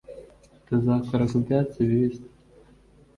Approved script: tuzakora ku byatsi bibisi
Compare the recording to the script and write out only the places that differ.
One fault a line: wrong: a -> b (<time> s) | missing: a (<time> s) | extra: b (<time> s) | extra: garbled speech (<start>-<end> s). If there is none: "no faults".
no faults